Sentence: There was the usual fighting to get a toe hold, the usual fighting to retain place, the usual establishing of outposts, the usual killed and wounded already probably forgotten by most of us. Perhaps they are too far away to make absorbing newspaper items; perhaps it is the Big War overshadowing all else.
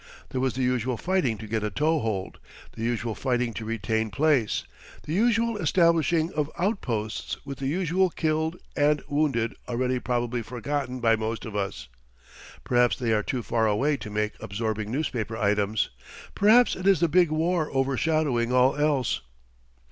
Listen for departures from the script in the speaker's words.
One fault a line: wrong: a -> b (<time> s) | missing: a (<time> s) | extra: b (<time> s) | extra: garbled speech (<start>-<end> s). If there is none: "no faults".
extra: with (7.5 s)